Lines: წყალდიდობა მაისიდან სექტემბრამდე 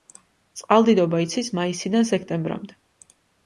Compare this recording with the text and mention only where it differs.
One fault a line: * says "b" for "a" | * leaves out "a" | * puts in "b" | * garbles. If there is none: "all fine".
* puts in "იცის"